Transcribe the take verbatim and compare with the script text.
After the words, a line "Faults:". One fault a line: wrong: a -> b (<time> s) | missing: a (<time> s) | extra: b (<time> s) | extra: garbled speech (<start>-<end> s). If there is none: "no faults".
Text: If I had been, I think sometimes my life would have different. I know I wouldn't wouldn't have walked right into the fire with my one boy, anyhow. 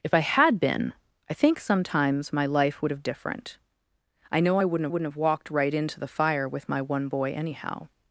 If I had been, I think sometimes my life would have different. I know I wouldn't wouldn't have walked right into the fire with my one boy, anyhow.
Faults:
no faults